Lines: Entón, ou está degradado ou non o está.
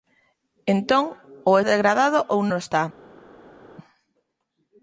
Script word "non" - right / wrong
wrong